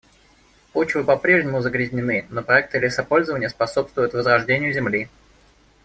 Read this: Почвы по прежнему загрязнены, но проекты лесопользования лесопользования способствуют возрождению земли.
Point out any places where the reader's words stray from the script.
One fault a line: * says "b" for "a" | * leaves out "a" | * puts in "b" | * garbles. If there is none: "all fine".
* leaves out "лесопользования"